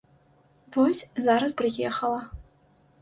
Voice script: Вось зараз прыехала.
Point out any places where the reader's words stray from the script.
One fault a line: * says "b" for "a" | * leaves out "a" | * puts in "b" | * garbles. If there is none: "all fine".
all fine